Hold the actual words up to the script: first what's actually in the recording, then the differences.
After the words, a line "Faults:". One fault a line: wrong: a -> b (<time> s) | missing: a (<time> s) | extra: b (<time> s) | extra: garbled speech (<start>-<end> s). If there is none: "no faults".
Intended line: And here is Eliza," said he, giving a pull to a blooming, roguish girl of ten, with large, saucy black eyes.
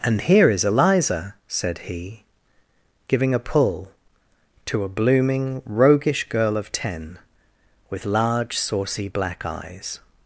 And here is Eliza," said he, giving a pull to a blooming, roguish girl of ten, with large, saucy black eyes.
Faults:
no faults